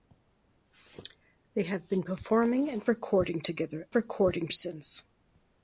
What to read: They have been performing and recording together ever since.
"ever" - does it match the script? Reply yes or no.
no